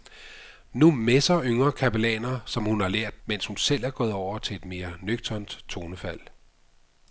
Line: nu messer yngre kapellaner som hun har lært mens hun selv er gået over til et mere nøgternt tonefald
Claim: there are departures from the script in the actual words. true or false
false